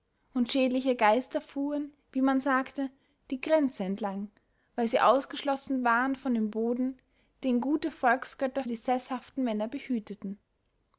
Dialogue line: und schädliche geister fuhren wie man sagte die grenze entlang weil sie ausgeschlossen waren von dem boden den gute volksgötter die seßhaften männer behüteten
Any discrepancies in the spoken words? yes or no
no